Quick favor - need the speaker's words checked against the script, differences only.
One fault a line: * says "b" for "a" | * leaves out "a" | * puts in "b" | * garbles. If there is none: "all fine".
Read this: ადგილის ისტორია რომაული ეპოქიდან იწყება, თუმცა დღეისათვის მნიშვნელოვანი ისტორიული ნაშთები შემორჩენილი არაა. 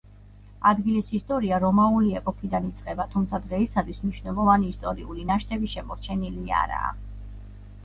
all fine